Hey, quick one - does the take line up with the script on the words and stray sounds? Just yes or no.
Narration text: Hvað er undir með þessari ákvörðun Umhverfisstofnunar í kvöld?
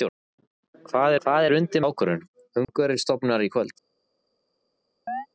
no